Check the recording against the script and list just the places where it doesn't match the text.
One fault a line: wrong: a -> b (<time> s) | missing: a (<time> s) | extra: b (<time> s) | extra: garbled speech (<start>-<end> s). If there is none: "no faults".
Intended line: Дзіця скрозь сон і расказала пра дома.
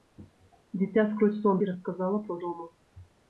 no faults